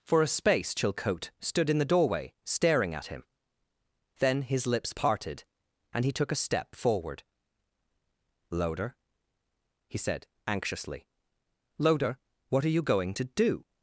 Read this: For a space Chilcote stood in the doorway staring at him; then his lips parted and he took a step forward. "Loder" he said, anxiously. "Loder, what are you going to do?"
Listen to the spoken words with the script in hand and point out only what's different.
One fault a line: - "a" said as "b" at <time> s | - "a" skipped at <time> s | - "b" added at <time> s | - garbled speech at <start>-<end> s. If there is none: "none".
none